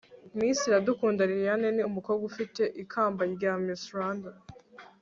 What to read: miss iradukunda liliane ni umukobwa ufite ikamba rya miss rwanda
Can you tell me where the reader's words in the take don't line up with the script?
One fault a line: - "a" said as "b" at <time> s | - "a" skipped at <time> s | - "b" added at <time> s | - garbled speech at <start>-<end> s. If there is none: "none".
none